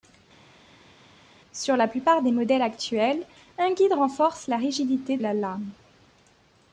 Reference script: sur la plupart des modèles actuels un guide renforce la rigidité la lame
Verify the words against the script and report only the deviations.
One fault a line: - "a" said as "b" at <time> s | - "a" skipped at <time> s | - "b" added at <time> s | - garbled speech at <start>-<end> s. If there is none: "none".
none